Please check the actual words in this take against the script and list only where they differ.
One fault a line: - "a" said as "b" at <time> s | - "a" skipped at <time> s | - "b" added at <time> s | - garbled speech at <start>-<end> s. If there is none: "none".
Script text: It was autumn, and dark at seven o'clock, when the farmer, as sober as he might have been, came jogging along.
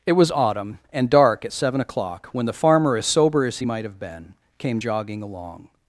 none